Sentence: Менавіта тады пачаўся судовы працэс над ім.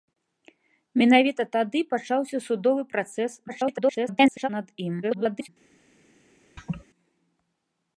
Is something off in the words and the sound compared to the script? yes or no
yes